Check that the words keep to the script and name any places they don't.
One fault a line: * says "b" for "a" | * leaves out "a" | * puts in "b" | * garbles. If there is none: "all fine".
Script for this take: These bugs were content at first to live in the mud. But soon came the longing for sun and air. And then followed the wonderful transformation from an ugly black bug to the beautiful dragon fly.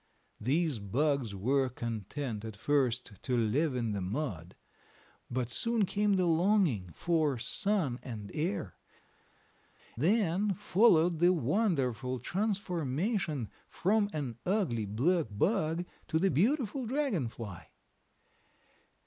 * leaves out "And"